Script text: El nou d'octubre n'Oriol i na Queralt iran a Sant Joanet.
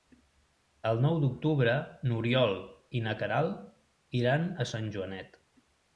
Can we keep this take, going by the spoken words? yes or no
yes